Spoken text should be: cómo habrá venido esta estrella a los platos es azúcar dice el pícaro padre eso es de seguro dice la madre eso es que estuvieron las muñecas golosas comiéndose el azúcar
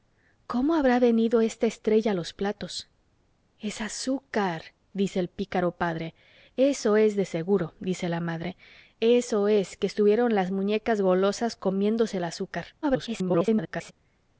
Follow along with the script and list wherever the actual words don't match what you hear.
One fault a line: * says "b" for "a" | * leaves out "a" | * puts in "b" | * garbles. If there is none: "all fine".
* garbles